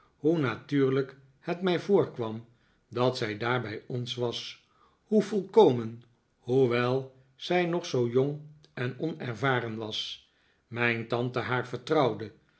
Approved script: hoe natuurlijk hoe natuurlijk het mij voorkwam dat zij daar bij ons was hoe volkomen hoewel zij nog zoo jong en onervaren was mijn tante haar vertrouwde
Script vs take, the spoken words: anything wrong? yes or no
yes